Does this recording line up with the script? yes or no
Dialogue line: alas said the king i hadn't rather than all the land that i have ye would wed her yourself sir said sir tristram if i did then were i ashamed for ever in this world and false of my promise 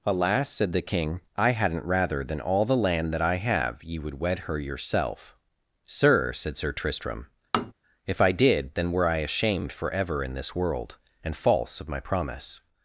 yes